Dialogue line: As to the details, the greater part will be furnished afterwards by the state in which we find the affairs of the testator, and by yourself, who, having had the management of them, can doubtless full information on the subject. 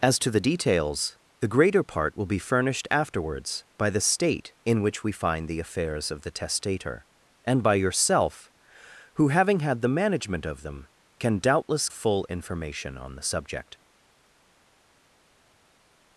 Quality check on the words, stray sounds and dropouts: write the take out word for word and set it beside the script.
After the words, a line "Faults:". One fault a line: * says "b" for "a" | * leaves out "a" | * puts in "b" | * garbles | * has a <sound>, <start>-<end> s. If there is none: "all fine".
As to the details, the greater part will be furnished afterwards by the state in which we find the affairs of the testator, and by yourself, who, having had the management of them, can doubtless full information on the subject.
Faults:
all fine